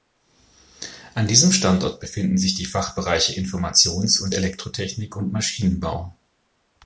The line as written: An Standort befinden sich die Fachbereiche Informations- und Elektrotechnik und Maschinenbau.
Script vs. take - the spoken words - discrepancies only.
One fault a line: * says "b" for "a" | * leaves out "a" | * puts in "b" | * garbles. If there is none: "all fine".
* puts in "diesem"